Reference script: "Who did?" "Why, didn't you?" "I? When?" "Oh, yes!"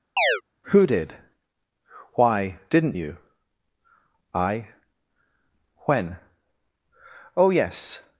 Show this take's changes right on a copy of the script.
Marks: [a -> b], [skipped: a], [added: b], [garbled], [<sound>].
[chirp] "Who did?" "Why, didn't you?" "I? When?" "Oh, yes!"